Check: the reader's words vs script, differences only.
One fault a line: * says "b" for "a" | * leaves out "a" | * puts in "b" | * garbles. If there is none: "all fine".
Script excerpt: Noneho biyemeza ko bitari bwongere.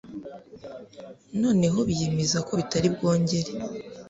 all fine